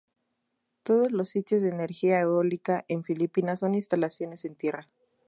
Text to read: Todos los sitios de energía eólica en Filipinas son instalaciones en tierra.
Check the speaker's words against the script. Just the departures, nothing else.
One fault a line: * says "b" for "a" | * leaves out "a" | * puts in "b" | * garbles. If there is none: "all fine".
all fine